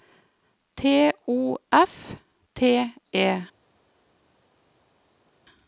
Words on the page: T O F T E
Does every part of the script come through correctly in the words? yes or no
yes